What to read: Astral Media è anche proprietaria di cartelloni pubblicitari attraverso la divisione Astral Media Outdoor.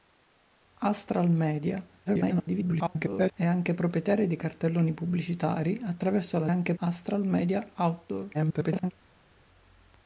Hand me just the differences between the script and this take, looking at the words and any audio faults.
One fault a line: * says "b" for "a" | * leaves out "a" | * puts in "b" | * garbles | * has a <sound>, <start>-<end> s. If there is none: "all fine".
* garbles
* says "anche" for "divisione"
* garbles